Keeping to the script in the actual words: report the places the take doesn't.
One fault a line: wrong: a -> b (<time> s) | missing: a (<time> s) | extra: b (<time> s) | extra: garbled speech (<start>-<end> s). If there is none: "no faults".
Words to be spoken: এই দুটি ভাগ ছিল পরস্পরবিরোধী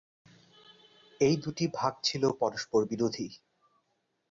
no faults